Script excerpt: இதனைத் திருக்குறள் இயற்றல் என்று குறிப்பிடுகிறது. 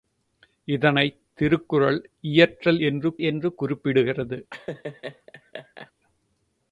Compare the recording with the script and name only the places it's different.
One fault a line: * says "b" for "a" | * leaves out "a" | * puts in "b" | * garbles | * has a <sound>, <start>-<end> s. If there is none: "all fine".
* puts in "என்று"
* has a laugh, 4.5-5.9 s